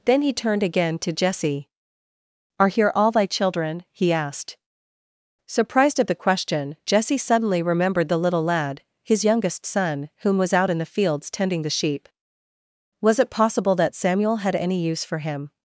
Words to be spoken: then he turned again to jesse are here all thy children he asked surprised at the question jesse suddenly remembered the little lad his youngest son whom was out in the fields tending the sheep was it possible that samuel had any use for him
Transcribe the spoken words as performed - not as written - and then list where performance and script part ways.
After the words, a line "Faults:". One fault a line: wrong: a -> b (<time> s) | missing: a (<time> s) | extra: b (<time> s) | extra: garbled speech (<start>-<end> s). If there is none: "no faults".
then he turned again to jesse are here all thy children he asked surprised at the question jesse suddenly remembered the little lad his youngest son whom was out in the fields tending the sheep was it possible that samuel had any use for him
Faults:
no faults